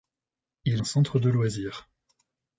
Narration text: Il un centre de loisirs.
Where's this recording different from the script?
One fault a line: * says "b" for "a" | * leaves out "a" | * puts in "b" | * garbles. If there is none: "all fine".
all fine